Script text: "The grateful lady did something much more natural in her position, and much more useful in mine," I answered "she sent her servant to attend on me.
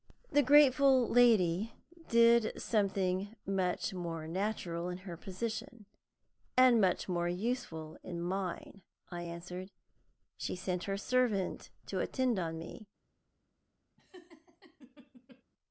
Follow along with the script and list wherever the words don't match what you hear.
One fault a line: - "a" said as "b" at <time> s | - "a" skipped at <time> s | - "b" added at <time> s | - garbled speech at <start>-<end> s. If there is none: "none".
none